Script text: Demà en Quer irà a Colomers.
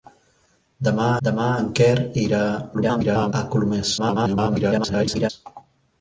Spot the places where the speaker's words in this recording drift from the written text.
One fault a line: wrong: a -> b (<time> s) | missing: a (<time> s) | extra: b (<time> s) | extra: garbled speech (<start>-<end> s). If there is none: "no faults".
extra: demà (1.3 s)
extra: garbled speech (2.7-3.3 s)
extra: garbled speech (4.0-5.3 s)